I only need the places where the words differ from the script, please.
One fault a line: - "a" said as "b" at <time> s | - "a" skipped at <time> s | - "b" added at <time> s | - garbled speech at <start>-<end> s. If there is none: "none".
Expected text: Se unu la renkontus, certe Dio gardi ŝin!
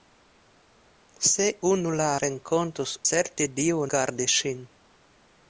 none